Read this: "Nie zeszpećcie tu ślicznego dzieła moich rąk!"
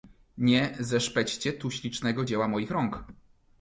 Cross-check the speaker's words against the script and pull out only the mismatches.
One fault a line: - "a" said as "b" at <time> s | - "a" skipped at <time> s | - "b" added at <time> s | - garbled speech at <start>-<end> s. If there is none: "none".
none